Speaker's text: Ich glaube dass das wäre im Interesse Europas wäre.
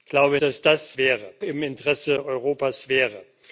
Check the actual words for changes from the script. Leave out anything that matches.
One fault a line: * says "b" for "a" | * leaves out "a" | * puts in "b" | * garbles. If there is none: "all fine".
all fine